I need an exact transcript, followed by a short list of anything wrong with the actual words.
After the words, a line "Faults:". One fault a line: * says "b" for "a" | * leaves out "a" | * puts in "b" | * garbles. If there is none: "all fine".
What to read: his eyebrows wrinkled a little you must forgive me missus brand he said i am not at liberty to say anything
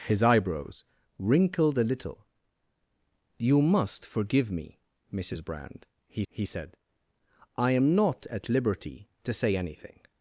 his eyebrows wrinkled a little you must forgive me missus brand he he said i am not at liberty to say anything
Faults:
* puts in "he"